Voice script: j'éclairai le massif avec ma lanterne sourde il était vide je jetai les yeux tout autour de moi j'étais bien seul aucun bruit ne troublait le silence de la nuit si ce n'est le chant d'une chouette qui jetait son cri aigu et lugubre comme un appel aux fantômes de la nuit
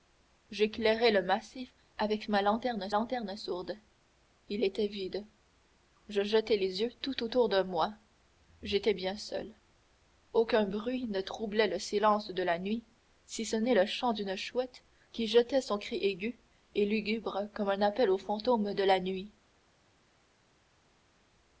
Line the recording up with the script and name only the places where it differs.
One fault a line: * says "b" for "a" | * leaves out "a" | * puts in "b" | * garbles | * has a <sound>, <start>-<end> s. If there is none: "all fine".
* puts in "lanterne"